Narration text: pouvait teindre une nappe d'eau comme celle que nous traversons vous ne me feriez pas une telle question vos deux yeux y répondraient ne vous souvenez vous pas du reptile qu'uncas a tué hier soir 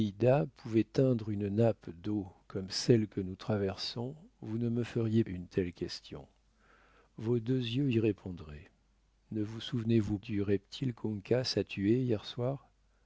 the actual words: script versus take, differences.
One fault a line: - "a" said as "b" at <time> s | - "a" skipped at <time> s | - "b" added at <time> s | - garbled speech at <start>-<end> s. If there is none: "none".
- "pas" skipped at 5.2 s
- "pas" skipped at 10.2 s